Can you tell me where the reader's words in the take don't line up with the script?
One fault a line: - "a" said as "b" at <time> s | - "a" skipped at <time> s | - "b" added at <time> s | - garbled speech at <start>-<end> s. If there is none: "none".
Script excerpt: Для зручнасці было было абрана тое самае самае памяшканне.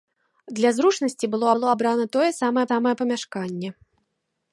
none